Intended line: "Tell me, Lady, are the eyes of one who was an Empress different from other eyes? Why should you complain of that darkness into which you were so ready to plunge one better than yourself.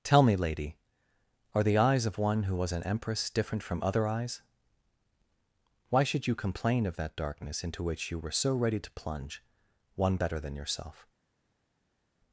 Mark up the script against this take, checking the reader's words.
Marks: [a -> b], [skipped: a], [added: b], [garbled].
"Tell me, Lady, are the eyes of one who was an Empress different from other eyes? Why should you complain of that darkness into which you were so ready to plunge one better than yourself.